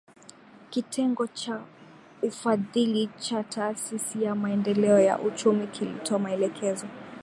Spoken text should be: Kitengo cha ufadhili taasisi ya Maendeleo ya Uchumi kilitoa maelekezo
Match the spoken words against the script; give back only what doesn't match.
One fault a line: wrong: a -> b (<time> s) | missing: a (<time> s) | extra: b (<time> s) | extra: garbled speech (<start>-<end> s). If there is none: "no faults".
extra: cha (3.2 s)